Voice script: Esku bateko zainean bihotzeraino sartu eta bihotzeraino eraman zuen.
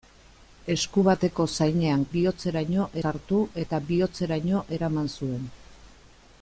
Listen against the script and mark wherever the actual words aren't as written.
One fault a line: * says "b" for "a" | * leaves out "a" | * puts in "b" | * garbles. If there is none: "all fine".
all fine